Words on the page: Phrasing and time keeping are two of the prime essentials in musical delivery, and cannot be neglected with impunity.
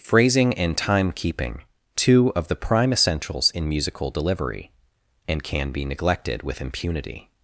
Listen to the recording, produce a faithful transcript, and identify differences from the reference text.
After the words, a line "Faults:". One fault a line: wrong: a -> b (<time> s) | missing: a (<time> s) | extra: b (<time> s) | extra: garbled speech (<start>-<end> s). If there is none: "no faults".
Phrasing and time keeping two of the prime essentials in musical delivery, and can be neglected with impunity.
Faults:
missing: are (1.6 s)
wrong: cannot -> can (5.4 s)